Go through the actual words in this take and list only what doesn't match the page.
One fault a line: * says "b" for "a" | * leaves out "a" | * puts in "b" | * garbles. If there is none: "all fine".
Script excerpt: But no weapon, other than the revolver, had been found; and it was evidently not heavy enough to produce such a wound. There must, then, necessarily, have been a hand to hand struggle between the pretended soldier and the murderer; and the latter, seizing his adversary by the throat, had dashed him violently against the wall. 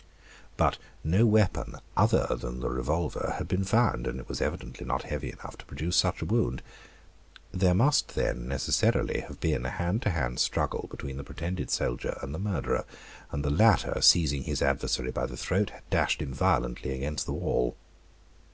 all fine